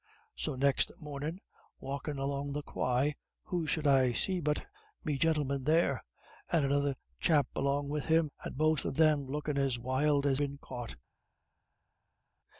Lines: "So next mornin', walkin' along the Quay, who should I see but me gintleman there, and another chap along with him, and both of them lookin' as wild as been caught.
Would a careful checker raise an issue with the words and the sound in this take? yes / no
no